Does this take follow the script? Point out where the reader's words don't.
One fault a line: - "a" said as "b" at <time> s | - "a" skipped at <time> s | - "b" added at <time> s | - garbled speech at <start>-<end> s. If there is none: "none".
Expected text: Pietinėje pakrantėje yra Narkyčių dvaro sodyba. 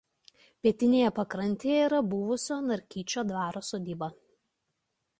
- "buvusio" added at 2.1 s